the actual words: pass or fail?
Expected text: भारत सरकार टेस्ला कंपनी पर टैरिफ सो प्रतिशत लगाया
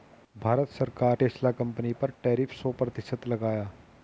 pass